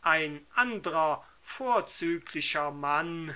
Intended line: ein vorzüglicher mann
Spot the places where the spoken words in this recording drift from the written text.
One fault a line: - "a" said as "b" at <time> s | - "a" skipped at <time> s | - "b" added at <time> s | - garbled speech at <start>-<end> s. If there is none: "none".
- "andrer" added at 0.5 s